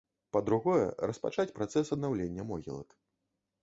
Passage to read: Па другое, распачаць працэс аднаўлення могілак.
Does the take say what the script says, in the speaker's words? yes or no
yes